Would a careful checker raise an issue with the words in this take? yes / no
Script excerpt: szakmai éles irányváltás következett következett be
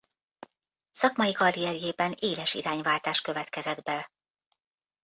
yes